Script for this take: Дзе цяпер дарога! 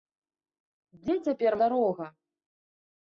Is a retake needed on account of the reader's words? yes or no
no